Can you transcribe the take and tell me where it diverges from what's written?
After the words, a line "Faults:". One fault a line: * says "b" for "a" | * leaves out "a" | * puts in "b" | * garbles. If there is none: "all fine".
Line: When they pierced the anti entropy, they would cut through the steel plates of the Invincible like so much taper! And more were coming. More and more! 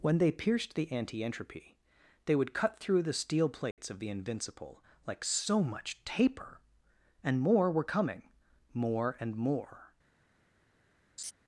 When they pierced the anti entropy, they would cut through the steel plates of the Invincible like so much taper! And more were coming. More and more!
Faults:
all fine